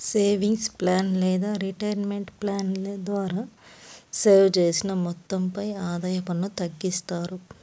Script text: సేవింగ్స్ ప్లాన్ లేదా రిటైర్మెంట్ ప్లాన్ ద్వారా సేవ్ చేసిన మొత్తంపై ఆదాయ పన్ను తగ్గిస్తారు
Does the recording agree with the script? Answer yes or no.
yes